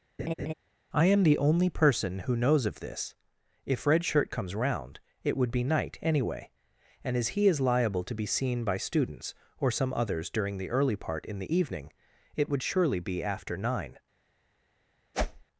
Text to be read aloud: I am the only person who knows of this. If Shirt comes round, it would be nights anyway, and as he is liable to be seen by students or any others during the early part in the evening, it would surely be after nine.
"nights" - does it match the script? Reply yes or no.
no